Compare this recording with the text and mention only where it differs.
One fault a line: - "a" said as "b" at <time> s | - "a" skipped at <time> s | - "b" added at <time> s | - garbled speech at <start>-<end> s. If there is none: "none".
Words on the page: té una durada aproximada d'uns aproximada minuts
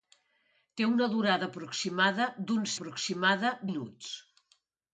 none